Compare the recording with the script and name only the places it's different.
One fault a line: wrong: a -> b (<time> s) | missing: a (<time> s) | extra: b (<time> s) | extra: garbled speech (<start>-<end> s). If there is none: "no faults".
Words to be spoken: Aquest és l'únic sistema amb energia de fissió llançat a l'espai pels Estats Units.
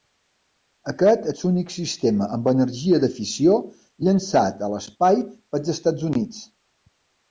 no faults